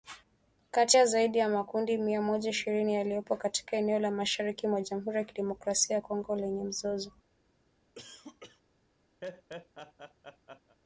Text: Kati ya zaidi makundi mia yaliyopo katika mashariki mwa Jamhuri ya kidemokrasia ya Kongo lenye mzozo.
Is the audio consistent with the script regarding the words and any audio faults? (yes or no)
no